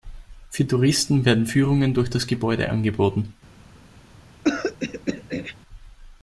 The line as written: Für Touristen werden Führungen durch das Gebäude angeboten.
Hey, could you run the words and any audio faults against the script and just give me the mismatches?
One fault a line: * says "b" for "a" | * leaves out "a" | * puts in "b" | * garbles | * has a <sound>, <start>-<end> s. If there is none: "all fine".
* has a throat clearing, 4.4-5.6 s